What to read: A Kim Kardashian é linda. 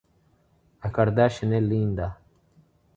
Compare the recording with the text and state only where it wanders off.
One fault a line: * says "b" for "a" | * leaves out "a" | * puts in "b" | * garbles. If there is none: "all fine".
* leaves out "Kim"